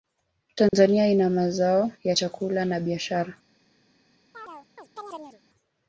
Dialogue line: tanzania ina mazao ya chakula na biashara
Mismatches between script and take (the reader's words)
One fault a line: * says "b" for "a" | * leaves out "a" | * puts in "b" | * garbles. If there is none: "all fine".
all fine